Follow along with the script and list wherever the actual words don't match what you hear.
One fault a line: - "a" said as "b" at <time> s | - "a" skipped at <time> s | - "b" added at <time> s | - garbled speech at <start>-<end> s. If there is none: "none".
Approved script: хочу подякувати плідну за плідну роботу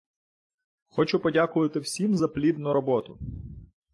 - "плідну" said as "всім" at 1.8 s